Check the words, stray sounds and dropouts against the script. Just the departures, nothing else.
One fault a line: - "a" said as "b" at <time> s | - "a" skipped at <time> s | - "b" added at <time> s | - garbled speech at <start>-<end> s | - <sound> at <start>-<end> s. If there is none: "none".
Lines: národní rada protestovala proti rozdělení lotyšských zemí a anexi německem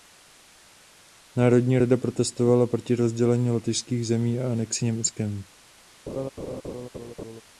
- laugh at 6.1-7.4 s